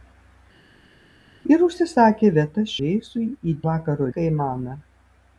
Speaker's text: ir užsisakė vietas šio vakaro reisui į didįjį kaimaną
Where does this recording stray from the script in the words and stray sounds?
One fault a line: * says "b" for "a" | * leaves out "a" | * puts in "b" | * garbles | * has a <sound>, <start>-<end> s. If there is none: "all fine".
* leaves out "šio vakaro"
* says "vakaro" for "didįjį"